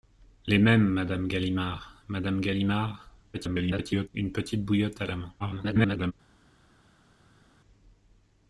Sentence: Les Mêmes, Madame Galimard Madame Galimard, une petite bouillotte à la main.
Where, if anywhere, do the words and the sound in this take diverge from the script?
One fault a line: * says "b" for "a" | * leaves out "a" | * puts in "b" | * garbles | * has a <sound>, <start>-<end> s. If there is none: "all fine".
* garbles
* garbles